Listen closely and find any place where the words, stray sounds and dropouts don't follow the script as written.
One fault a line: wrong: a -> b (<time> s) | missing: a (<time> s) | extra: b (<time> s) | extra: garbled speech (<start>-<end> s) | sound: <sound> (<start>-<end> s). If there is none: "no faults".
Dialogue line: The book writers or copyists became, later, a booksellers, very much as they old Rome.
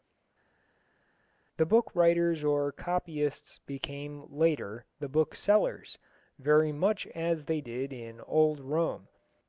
wrong: a -> the (5.0 s)
extra: did in (7.6 s)